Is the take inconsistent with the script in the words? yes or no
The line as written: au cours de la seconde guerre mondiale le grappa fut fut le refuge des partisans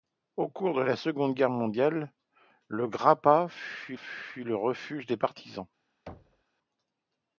no